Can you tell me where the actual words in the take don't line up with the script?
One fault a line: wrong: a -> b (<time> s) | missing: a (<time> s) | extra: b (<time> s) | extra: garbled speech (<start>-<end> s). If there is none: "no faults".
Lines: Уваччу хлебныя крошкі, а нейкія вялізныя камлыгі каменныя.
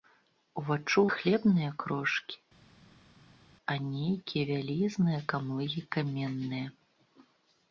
no faults